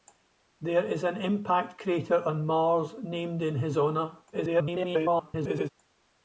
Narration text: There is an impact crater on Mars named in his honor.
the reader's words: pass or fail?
fail